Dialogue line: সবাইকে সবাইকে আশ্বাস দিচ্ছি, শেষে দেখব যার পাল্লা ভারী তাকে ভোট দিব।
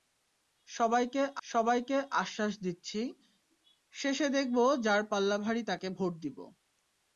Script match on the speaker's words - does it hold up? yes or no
yes